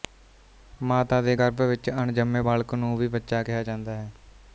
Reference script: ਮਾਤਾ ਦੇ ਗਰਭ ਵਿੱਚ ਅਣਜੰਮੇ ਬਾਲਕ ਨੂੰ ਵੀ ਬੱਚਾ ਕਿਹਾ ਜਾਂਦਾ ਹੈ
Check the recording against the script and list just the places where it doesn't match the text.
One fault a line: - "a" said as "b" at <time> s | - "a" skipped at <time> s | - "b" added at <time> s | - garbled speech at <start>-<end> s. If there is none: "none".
none